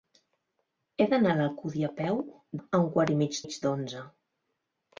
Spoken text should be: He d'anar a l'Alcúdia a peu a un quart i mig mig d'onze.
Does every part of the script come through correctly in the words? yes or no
yes